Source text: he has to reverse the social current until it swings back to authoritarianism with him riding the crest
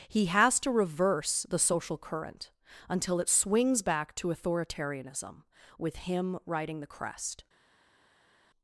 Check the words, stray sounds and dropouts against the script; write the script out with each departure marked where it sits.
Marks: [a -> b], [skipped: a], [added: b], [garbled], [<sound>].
he has to reverse the social current until it swings back to authoritarianism with him riding the crest